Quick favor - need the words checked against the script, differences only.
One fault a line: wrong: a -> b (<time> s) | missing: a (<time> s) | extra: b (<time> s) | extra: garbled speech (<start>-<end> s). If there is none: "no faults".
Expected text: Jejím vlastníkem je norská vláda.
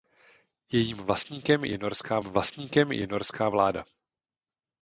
extra: vlastníkem je norská (2.2 s)